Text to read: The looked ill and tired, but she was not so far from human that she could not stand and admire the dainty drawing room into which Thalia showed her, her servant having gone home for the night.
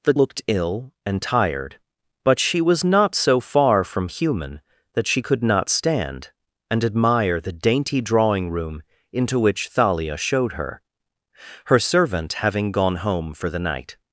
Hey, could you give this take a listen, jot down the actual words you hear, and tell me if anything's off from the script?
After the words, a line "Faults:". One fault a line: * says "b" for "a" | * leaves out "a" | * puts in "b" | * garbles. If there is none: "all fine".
The looked ill and tired, but she was not so far from human that she could not stand and admire the dainty drawing room into which Thalia showed her, her servant having gone home for the night.
Faults:
all fine